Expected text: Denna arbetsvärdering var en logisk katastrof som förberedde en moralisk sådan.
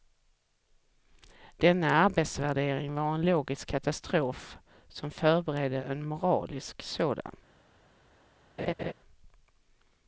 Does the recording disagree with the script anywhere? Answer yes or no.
no